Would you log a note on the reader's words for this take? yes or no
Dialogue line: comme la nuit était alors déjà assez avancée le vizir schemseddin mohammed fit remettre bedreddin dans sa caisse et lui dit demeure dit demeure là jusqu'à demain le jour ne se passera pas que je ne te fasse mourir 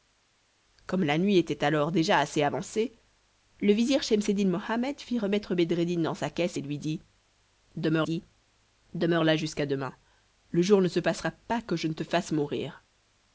no